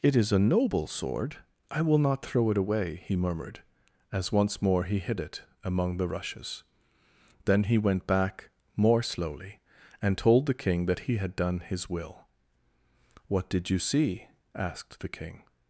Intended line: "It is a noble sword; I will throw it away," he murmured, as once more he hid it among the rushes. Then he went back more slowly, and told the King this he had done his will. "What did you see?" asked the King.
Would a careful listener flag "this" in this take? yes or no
yes